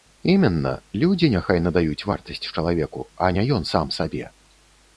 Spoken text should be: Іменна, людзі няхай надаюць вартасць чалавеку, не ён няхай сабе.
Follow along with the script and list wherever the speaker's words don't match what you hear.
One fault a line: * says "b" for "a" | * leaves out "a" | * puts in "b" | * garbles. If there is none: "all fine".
* puts in "а"
* says "сам" for "няхай"